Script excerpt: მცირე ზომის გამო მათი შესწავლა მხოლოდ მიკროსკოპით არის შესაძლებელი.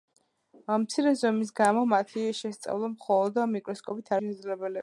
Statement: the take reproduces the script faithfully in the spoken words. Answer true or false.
false